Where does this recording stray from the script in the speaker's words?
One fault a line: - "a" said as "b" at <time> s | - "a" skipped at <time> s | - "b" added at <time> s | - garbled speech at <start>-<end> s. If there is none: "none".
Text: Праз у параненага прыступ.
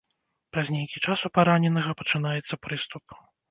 - "нейкі час" added at 0.8 s
- "пачынаецца" added at 2.1 s